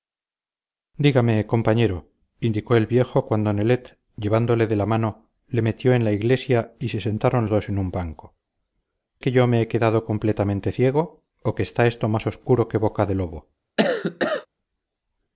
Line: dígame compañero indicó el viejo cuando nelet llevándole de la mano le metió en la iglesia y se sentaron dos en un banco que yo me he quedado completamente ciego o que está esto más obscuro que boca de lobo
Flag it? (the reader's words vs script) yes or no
no